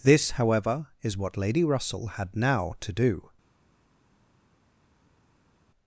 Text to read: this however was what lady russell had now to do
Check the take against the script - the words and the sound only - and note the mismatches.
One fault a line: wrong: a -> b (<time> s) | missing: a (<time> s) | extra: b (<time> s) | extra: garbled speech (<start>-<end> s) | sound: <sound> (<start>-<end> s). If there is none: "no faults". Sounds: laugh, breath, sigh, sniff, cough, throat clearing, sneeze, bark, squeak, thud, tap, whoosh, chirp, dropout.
wrong: was -> is (1.0 s)